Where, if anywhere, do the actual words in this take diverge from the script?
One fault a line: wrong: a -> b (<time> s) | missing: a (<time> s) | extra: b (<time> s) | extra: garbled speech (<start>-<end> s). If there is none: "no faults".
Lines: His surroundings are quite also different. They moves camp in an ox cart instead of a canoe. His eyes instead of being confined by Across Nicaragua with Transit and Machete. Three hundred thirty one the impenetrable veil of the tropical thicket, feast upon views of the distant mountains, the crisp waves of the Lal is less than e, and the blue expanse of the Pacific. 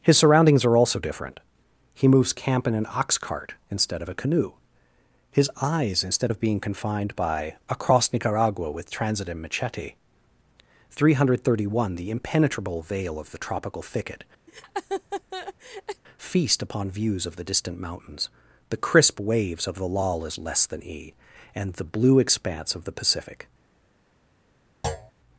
missing: quite (0.8 s)
wrong: They -> He (1.9 s)